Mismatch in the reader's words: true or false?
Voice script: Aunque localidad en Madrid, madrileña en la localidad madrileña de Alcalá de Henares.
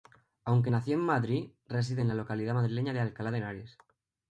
true